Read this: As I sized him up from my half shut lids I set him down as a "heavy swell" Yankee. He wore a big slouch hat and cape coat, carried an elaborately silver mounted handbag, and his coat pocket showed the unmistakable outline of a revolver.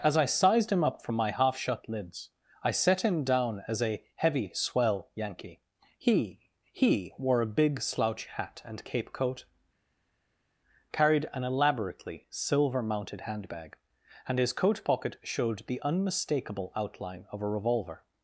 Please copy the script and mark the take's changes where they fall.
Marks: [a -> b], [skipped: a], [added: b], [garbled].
As I sized him up from my half shut lids I set him down as a "heavy swell" Yankee. He [added: He] wore a big slouch hat and cape coat, carried an elaborately silver mounted handbag, and his coat pocket showed the unmistakable outline of a revolver.